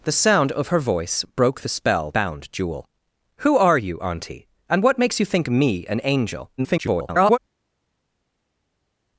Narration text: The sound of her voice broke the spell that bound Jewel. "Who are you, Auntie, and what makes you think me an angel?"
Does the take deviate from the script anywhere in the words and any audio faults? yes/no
yes